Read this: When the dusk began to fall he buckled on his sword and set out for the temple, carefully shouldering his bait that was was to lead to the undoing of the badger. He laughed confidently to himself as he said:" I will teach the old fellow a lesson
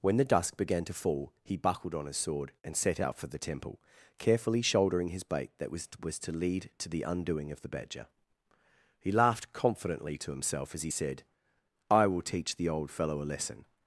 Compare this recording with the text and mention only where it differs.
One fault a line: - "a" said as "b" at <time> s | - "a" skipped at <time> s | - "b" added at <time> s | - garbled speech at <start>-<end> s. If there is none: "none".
none